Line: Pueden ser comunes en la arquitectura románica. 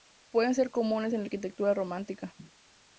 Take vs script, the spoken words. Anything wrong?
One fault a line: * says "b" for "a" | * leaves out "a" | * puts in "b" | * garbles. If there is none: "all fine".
all fine